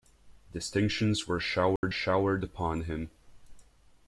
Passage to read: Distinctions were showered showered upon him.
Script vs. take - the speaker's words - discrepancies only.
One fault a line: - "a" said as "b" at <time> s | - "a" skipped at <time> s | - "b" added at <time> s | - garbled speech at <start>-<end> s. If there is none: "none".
none